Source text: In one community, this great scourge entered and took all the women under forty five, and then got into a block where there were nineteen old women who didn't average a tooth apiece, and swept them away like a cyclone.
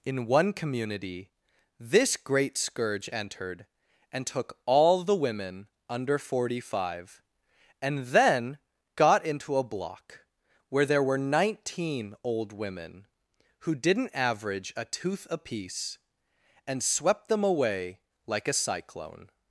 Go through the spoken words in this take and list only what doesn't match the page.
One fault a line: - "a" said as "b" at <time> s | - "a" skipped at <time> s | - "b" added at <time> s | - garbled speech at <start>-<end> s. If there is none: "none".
none